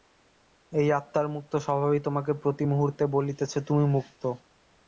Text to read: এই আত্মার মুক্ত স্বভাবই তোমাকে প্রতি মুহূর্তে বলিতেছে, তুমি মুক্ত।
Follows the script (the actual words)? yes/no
yes